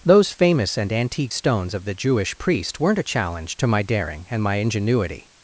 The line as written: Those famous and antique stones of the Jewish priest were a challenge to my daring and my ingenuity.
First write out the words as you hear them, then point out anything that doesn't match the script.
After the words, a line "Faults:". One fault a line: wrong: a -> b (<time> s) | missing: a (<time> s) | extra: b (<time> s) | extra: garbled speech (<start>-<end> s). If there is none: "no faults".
Those famous and antique stones of the Jewish priest weren't a challenge to my daring and my ingenuity.
Faults:
wrong: were -> weren't (2.8 s)